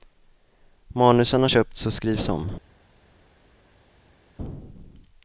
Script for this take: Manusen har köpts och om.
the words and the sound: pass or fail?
fail